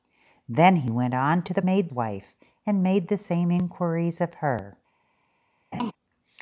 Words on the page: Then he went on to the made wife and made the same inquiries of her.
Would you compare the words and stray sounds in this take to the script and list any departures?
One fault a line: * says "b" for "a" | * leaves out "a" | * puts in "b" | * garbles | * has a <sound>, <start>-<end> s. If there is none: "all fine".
* has a laugh, 5.7-5.9 s